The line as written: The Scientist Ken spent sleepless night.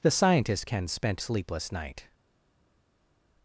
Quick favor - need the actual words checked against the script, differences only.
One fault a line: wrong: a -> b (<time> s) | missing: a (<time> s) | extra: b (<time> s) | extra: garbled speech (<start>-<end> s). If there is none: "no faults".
no faults